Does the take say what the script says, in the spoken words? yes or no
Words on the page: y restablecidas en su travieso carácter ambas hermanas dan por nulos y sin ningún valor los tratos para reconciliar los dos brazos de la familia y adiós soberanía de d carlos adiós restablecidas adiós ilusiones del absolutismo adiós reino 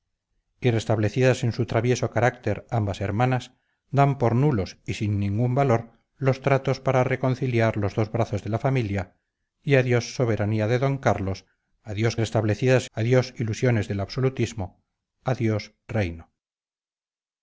yes